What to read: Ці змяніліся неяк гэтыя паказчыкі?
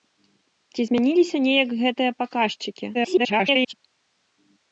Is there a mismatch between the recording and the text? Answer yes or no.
yes